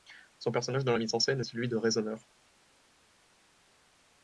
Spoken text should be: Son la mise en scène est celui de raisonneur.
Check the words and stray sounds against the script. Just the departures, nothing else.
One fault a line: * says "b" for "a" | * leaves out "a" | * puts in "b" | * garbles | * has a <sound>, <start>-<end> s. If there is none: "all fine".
* puts in "personnage dans"